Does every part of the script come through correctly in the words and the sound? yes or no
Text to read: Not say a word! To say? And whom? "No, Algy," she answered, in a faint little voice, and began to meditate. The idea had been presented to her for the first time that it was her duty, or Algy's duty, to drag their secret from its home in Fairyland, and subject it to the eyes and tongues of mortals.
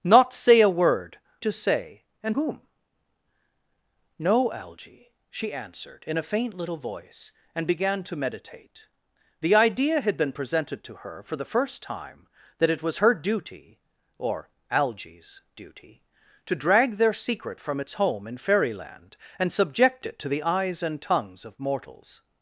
yes